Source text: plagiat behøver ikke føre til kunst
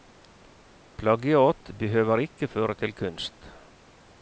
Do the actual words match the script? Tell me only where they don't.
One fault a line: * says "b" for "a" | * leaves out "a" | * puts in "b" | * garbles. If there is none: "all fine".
all fine